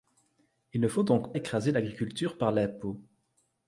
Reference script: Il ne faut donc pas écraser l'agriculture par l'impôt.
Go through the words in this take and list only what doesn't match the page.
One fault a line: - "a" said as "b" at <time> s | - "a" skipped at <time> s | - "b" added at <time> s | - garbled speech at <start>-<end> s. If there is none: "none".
- "pas" skipped at 1.3 s